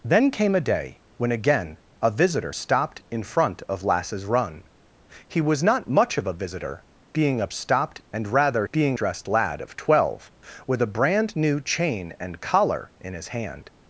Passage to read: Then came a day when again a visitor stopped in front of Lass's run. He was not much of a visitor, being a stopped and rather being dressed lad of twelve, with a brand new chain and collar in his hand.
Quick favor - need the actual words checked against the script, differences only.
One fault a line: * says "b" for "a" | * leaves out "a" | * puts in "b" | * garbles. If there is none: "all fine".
all fine